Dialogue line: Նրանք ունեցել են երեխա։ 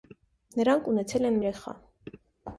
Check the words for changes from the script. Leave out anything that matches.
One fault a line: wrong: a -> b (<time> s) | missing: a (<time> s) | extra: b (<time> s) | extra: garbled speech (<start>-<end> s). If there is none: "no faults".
no faults